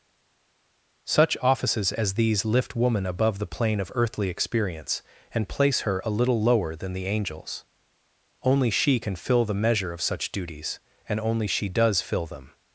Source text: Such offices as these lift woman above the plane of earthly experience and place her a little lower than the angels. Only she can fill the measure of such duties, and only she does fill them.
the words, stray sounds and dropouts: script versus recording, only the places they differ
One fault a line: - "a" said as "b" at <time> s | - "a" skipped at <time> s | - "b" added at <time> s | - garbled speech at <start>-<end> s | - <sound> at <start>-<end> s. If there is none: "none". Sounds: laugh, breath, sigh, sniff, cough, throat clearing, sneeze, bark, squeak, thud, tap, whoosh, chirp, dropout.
none